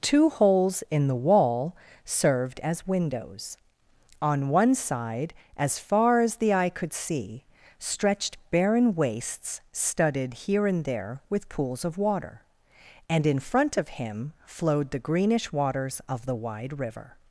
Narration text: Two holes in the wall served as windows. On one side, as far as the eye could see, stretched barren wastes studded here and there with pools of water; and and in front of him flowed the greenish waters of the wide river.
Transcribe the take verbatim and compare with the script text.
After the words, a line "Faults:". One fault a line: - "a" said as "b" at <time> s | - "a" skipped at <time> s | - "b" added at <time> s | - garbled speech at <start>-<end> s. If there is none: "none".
Two holes in the wall served as windows. On one side, as far as the eye could see, stretched barren wastes studded here and there with pools of water; and in front of him flowed the greenish waters of the wide river.
Faults:
- "and" skipped at 13.2 s